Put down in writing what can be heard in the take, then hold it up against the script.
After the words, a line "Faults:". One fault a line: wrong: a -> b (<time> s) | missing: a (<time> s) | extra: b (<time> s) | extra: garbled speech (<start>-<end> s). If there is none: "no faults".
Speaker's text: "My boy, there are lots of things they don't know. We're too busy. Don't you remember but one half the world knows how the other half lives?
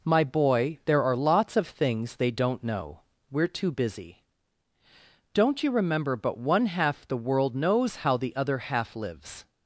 "My boy, there are lots of things they don't know. We're too busy. Don't you remember but one half the world knows how the other half lives?
Faults:
no faults